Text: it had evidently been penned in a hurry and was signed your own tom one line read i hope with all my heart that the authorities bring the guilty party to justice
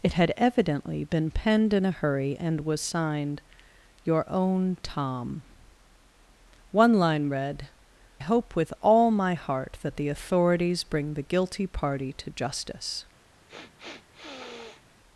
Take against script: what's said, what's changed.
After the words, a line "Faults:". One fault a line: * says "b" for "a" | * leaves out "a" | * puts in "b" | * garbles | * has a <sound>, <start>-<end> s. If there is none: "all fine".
it had evidently been penned in a hurry and was signed your own tom one line read hope with all my heart that the authorities bring the guilty party to justice
Faults:
* leaves out "i"
* has a sniff, 13.5-14.8 s